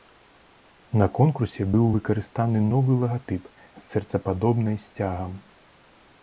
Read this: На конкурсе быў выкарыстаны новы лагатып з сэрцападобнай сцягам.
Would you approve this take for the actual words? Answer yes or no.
yes